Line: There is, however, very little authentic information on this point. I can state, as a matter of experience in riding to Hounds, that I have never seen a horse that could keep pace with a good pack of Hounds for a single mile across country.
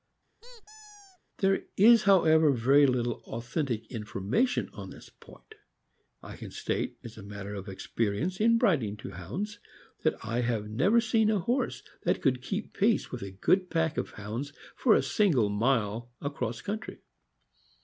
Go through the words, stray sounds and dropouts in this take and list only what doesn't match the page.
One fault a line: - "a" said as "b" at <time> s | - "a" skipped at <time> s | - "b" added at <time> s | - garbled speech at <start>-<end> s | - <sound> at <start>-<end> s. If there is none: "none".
- squeak at 0.4-1.2 s